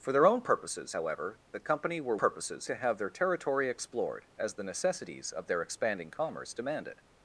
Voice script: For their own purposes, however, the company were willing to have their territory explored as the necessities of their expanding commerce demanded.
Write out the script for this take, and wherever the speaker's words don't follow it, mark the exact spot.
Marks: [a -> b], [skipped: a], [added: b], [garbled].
For their own purposes, however, the company were [willing -> purposes] to have their territory explored as the necessities of their expanding commerce demanded.